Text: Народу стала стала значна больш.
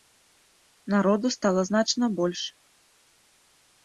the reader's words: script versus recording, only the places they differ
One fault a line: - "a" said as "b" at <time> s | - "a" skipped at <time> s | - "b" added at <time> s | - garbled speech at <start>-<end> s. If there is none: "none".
- "стала" skipped at 1.6 s